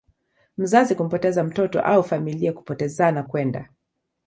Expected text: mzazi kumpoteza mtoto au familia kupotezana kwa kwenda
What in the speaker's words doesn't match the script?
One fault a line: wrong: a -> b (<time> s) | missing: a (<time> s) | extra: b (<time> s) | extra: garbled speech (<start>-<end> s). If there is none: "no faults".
missing: kwa (3.2 s)